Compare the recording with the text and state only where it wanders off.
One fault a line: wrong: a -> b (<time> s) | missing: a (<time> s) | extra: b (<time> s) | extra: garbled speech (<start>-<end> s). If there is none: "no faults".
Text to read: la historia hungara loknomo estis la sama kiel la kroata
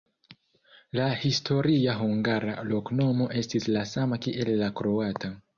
no faults